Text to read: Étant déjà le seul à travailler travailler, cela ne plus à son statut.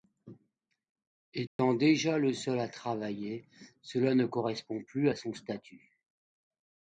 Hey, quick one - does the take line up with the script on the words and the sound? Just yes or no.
no